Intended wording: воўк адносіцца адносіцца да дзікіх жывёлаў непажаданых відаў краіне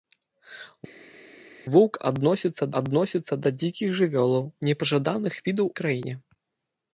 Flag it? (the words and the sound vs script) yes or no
no